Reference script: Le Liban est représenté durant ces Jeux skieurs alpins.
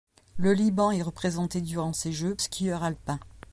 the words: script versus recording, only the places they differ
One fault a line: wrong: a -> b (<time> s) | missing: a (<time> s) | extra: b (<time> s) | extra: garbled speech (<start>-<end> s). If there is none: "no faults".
no faults